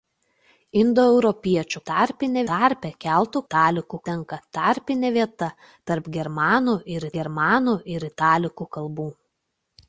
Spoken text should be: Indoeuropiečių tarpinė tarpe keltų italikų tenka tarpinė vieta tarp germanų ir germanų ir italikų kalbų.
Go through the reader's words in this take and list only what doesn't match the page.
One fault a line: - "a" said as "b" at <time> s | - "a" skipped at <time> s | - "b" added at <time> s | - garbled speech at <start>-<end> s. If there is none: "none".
none